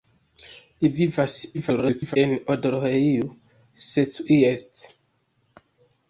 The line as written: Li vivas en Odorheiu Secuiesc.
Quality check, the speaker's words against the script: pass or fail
fail